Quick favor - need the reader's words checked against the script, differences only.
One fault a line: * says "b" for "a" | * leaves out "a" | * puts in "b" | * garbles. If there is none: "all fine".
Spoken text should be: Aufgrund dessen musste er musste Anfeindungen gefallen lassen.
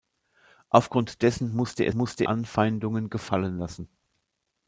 all fine